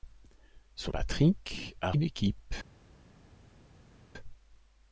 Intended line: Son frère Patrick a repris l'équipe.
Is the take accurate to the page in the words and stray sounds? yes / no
no